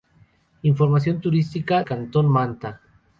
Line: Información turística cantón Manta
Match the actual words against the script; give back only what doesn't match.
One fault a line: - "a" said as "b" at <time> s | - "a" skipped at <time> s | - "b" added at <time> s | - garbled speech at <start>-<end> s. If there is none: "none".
none